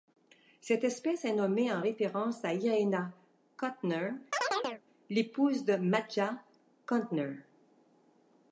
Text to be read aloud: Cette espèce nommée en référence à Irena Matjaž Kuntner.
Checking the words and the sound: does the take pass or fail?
fail